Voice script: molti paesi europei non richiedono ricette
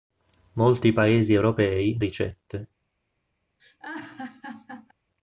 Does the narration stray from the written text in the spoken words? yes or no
yes